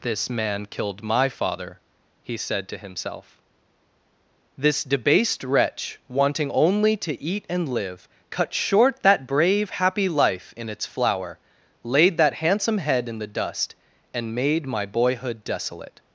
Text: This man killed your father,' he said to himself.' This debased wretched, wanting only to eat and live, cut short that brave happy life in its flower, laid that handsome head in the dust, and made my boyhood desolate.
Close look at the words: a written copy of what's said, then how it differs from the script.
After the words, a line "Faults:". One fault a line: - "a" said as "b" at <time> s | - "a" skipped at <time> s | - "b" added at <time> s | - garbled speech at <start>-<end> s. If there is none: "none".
This man killed my father,' he said to himself.' This debased wretch, wanting only to eat and live, cut short that brave happy life in its flower, laid that handsome head in the dust, and made my boyhood desolate.
Faults:
- "your" said as "my" at 1.0 s
- "wretched" said as "wretch" at 5.4 s